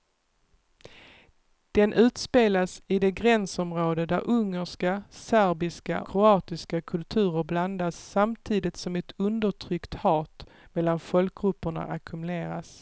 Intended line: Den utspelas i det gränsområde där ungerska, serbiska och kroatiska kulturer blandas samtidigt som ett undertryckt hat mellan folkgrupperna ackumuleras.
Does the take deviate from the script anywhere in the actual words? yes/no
yes